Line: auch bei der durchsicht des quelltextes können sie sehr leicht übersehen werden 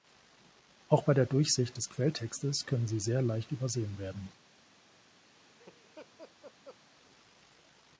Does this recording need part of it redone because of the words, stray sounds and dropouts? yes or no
yes